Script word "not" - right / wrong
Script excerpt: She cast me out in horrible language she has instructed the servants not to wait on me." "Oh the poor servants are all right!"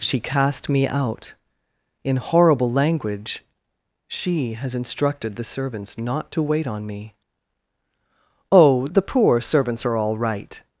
right